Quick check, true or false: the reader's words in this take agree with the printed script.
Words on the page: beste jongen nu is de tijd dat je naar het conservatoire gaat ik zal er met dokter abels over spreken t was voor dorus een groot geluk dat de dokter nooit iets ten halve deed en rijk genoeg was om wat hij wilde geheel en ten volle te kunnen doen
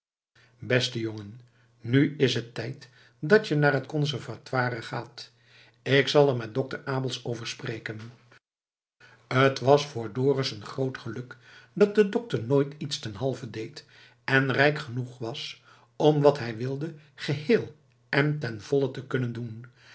false